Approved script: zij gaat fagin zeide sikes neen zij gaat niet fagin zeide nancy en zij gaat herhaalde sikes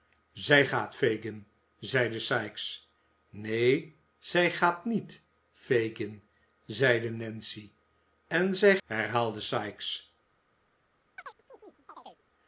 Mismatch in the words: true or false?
true